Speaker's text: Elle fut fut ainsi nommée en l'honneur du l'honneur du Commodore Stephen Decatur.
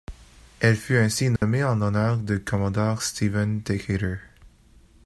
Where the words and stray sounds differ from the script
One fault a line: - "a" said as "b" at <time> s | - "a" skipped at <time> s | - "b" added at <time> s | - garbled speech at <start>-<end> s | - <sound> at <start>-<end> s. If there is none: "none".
- "fut" skipped at 1.0 s
- dropout at 1.4-1.4 s
- "l'honneur du" skipped at 2.4 s